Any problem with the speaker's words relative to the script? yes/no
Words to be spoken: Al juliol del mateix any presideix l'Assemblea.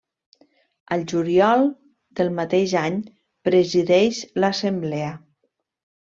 no